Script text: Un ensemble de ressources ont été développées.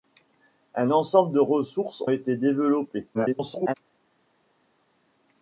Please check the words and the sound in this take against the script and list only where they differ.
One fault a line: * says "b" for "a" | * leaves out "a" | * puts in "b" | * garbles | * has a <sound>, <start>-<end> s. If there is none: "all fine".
* leaves out "ont"
* garbles